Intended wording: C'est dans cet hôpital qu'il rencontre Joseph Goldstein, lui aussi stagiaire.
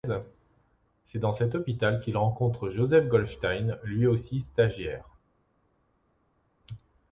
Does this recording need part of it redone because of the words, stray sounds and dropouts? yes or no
no